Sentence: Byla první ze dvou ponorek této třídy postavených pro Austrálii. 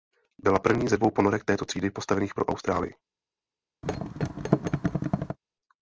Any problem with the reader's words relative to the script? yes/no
no